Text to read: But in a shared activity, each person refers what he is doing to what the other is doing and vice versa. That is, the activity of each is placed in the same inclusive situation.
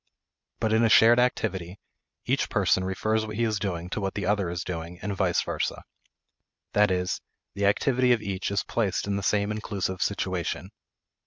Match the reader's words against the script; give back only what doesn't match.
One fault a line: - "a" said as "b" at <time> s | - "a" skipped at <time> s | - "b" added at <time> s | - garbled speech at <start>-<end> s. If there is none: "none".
none